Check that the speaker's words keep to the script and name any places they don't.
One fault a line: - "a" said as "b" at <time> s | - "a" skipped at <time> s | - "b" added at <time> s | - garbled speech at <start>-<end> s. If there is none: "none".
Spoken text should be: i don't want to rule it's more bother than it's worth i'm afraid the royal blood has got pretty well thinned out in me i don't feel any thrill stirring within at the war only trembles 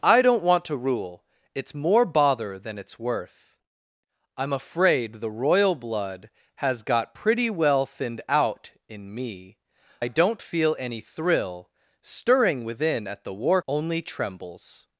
none